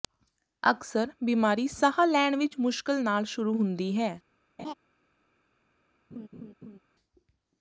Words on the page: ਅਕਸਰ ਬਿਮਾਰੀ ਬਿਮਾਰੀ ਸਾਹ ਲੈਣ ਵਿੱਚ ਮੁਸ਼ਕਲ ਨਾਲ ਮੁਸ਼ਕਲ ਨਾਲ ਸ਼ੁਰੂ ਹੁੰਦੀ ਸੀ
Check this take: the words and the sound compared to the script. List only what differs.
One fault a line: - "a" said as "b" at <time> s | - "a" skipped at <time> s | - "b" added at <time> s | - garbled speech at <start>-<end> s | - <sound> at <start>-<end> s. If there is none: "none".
- "ਬਿਮਾਰੀ" skipped at 1.7 s
- "ਮੁਸ਼ਕਲ ਨਾਲ" skipped at 3.2 s
- "ਸੀ" said as "ਹੈ" at 4.0 s
- laugh at 4.6-4.7 s
- laugh at 6.1-6.8 s